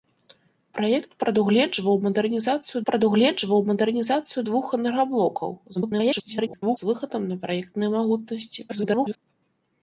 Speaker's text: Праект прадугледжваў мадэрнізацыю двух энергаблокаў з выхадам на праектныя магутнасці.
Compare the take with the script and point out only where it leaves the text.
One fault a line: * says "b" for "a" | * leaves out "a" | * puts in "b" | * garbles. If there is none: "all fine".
* puts in "прадугледжваў мадэрнізацыю"
* garbles
* garbles